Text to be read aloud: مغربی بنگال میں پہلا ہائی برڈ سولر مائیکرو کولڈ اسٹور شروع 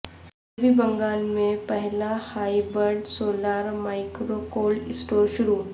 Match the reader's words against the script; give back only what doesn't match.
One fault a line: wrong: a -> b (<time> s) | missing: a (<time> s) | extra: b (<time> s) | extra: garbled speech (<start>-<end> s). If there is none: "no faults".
no faults